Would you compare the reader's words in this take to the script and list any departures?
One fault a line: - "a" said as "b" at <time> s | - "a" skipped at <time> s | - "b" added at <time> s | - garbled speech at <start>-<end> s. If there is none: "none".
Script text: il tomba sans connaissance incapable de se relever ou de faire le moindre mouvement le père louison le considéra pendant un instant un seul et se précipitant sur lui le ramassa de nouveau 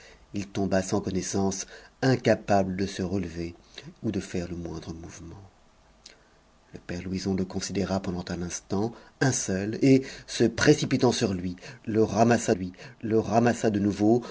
- "lui le ramassa" added at 12.5 s